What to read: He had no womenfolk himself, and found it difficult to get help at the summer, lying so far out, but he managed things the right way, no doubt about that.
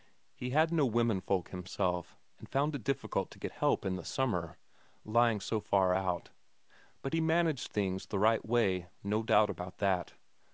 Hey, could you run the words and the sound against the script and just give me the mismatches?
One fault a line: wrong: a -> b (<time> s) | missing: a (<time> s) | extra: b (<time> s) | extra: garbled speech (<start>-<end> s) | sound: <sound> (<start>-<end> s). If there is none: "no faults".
wrong: at -> in (3.8 s)